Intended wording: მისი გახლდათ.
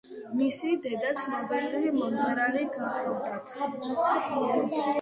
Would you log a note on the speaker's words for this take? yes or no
yes